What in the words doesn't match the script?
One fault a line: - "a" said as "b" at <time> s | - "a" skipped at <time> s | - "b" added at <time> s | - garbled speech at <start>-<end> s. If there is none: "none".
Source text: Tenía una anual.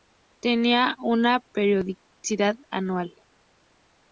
- "periodicidad" added at 1.5 s